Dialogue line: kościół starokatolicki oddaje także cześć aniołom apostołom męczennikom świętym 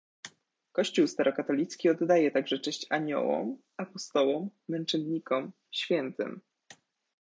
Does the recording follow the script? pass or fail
pass